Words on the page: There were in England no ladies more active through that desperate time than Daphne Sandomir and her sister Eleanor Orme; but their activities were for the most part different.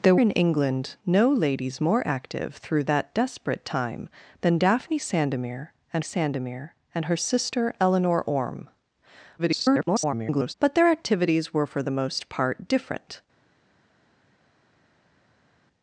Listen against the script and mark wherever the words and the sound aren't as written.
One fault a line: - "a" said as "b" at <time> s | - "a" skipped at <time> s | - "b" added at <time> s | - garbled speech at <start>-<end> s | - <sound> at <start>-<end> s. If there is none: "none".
- "were" skipped at 0.1 s
- "Sandomir and" added at 6.0 s
- garbled speech at 9.4-10.5 s